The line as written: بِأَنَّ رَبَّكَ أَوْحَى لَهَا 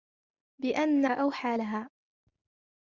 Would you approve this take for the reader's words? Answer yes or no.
no